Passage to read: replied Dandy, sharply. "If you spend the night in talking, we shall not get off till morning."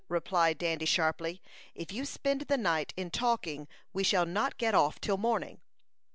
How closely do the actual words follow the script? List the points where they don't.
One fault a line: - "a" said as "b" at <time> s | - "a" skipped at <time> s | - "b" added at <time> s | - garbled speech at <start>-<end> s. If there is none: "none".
none